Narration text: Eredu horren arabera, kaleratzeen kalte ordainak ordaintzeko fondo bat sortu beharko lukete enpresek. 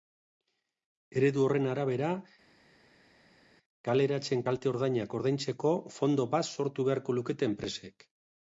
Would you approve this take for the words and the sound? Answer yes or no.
yes